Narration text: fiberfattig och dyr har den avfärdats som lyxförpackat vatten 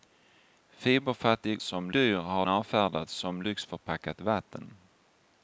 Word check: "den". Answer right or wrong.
wrong